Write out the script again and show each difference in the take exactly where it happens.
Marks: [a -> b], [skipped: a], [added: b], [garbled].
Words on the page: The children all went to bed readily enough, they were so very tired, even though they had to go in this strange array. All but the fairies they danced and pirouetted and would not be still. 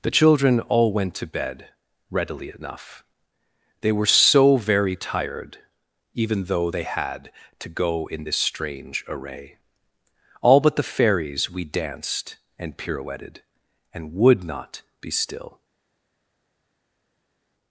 The children all went to bed readily enough, they were so very tired, even though they had to go in this strange array. All but the fairies [they -> we] danced and pirouetted and would not be still.